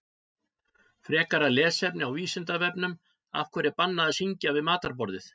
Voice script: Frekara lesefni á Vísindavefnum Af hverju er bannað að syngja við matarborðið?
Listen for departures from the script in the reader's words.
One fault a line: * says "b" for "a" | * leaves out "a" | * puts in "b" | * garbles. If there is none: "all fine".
all fine